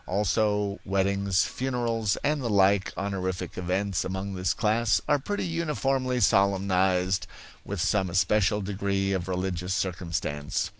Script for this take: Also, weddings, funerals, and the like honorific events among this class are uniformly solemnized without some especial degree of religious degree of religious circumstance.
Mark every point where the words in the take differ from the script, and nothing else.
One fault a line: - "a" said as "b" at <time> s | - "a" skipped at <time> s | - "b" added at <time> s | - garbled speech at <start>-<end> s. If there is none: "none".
- "pretty" added at 5.2 s
- "without" said as "with" at 7.6 s
- "degree of religious" skipped at 9.7 s